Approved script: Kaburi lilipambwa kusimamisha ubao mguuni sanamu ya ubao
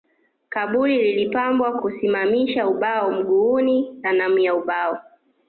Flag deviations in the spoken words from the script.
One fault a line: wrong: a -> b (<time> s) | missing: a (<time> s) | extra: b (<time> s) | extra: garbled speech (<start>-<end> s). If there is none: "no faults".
no faults